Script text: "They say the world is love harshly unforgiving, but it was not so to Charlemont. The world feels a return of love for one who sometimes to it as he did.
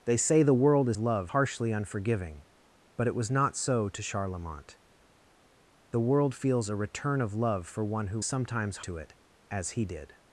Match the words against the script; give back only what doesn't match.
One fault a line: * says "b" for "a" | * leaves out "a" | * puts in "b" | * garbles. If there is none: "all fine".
all fine